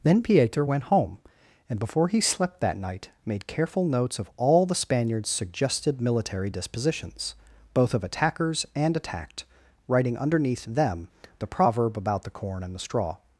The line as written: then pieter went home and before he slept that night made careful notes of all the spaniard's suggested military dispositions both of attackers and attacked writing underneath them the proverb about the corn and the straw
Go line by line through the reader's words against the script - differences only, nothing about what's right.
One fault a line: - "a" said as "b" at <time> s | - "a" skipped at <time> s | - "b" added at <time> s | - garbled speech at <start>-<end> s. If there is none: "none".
none